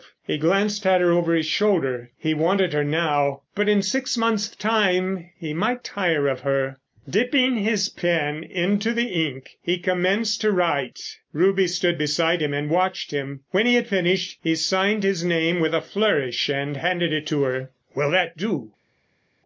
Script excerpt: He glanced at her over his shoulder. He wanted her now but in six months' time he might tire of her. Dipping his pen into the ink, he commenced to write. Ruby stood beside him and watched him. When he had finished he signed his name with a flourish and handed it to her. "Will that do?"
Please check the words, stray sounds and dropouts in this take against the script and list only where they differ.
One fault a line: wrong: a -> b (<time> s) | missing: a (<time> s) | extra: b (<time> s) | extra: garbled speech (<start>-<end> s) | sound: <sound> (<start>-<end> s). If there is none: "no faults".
no faults